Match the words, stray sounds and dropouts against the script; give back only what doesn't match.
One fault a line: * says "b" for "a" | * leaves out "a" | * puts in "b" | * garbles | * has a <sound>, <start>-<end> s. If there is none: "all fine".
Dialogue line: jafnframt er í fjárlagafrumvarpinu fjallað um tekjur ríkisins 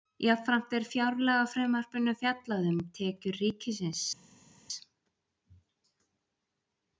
all fine